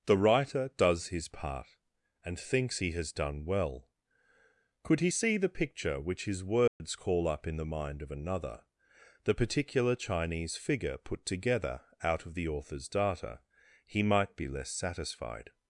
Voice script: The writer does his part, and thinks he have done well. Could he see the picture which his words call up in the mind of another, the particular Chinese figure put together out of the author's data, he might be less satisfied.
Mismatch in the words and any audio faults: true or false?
true